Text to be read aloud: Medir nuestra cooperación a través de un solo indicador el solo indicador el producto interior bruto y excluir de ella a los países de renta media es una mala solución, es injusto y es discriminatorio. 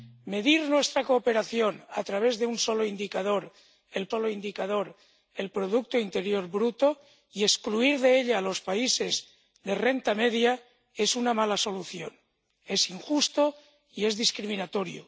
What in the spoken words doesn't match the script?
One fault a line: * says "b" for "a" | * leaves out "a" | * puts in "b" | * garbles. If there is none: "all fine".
all fine